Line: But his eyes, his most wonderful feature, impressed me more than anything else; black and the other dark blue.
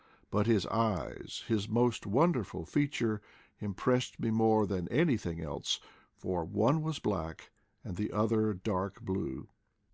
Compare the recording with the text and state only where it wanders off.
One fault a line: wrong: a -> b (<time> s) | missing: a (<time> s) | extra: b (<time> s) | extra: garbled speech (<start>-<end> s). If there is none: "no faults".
extra: for one was (6.1 s)